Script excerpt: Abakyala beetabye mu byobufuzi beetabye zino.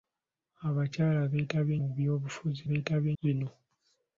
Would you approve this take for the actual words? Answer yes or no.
yes